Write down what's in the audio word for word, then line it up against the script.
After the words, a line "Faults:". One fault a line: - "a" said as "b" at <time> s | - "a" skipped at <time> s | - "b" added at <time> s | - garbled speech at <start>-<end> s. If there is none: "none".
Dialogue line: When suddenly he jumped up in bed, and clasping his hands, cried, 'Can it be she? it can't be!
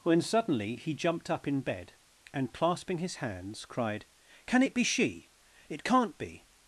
When suddenly he jumped up in bed, and clasping his hands, cried, 'Can it be she? it can't be!
Faults:
none